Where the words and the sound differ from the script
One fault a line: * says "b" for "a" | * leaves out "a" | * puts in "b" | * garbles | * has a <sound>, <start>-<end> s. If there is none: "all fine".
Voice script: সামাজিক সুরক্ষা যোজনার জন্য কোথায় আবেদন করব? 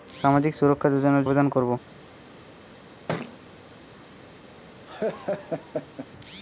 * leaves out "জন্য কোথায়"
* has a thud, 3.1-3.4 s
* has a laugh, 4.8-6.1 s